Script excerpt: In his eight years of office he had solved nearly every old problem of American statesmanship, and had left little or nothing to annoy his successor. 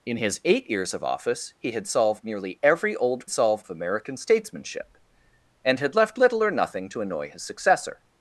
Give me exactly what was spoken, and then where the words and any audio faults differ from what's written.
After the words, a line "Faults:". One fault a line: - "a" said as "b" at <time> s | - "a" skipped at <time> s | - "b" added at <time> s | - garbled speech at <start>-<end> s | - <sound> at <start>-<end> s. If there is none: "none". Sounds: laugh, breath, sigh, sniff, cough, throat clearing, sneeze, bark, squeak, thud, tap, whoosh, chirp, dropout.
In his eight years of office he had solved nearly every old solved of American statesmanship, and had left little or nothing to annoy his successor.
Faults:
- "problem" said as "solved" at 3.3 s